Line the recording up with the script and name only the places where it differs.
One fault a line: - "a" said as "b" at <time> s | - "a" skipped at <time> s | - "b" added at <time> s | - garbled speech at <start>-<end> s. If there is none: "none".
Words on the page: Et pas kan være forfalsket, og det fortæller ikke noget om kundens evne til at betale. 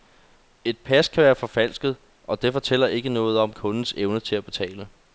none